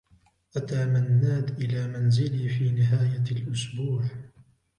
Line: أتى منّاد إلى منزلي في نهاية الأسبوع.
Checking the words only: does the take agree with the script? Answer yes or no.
yes